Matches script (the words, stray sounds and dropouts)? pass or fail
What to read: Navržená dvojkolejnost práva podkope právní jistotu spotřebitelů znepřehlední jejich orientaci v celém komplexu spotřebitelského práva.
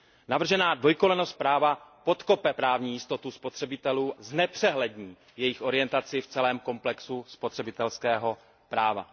pass